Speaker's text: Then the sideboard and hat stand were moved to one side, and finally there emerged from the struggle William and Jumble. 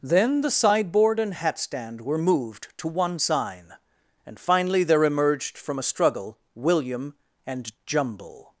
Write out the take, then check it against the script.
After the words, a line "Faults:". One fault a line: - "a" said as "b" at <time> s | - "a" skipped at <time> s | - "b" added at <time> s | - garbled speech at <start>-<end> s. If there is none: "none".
Then the sideboard and hat stand were moved to one sign, and finally there emerged from a struggle William and Jumble.
Faults:
- "side" said as "sign" at 3.2 s
- "the" said as "a" at 5.8 s